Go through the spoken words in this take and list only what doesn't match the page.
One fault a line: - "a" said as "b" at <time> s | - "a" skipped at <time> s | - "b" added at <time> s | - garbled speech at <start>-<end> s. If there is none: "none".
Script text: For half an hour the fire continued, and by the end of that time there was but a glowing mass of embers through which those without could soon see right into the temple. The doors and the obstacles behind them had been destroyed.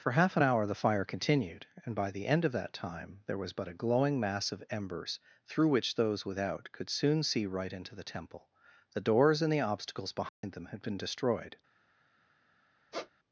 none